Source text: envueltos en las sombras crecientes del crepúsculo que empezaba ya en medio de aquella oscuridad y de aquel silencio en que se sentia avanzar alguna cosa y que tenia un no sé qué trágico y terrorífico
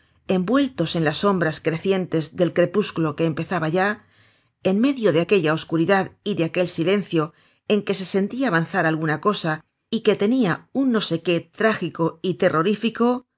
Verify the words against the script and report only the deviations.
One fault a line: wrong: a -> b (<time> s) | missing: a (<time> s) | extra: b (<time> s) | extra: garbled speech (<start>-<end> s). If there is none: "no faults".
no faults